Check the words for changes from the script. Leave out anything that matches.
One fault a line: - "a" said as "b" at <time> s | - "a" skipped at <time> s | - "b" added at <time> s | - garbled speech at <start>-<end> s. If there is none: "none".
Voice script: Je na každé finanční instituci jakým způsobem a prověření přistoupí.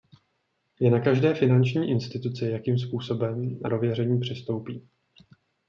none